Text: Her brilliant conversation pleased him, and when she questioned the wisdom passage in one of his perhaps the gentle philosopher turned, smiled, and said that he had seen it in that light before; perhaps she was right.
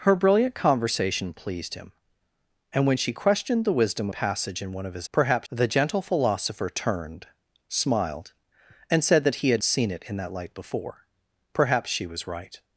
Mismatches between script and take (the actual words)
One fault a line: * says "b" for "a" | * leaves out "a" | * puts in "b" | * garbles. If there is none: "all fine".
all fine